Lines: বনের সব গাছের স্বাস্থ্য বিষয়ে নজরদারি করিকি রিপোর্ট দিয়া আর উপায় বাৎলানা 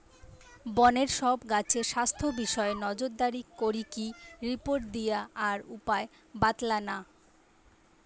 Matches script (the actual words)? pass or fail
pass